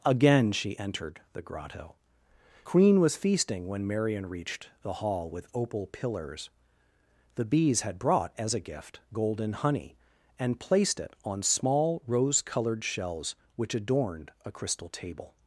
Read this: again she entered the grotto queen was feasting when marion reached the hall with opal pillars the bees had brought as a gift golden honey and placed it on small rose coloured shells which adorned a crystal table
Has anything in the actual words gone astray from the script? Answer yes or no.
no